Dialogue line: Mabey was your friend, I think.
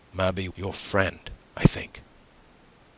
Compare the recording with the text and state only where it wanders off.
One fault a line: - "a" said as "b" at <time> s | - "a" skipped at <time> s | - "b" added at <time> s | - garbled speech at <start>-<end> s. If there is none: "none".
- "was" skipped at 0.5 s